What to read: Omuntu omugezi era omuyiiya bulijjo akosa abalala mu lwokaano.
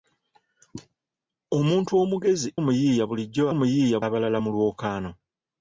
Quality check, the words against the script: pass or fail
fail